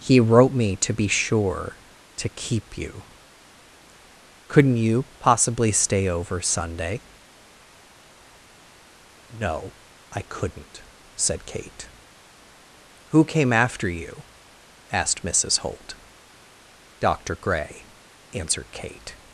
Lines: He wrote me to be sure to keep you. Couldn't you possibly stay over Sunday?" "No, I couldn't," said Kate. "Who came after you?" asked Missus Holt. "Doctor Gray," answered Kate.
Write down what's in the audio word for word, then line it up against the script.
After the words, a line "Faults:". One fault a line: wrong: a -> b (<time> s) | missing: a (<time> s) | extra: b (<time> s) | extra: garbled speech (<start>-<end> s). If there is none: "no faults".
He wrote me to be sure to keep you. Couldn't you possibly stay over Sunday?" "No, I couldn't," said Kate. "Who came after you?" asked Missus Holt. "Doctor Gray," answered Kate.
Faults:
no faults